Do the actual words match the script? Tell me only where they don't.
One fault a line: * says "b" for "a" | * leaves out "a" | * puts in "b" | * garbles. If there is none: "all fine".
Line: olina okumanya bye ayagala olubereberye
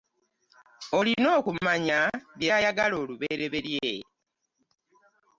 all fine